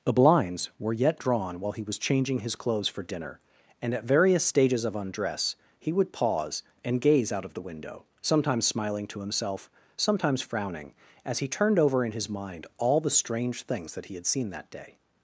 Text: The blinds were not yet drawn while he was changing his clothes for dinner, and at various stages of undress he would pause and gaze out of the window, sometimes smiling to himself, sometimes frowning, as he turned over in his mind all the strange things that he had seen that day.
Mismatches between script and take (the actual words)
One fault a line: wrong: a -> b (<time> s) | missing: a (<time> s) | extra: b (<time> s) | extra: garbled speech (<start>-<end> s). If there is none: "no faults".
missing: not (0.9 s)